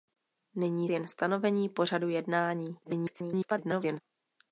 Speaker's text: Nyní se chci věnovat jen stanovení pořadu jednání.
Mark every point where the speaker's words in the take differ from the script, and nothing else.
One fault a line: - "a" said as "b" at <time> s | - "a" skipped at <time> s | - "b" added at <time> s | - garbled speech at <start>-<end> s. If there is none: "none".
- "se chci věnovat" skipped at 0.9 s
- garbled speech at 2.8-4.0 s